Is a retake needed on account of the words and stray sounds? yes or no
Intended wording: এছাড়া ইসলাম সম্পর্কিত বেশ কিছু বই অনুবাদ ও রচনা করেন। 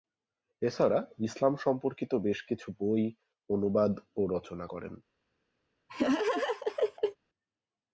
yes